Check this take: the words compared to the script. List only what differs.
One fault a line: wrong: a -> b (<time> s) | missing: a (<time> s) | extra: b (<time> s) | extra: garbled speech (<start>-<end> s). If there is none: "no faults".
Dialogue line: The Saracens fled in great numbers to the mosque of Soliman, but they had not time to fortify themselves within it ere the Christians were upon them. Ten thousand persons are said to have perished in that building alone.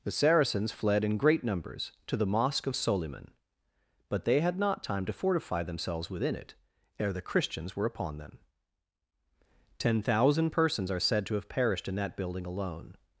no faults